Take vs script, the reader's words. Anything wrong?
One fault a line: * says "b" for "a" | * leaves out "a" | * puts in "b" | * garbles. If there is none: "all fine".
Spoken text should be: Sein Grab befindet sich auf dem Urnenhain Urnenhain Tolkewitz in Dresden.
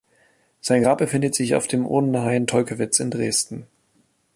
* leaves out "Urnenhain"